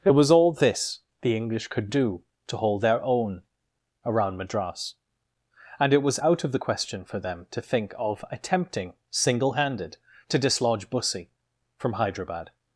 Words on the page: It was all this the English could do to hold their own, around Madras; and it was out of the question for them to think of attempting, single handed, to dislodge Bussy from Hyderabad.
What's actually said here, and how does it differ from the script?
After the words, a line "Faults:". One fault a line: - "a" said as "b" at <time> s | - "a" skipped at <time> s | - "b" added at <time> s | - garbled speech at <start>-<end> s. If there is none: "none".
It was all this the English could do to hold their own, around Madras; and it was out of the question for them to think of attempting, single handed, to dislodge Bussy from Hyderabad.
Faults:
none